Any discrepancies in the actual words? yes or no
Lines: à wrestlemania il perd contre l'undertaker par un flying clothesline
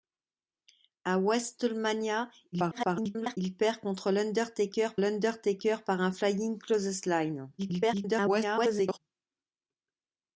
yes